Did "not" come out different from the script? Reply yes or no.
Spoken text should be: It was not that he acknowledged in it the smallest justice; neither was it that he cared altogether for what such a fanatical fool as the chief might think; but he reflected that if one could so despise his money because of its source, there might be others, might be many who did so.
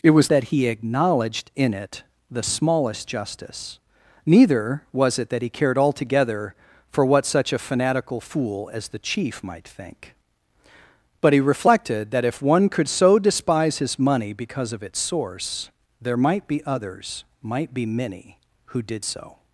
yes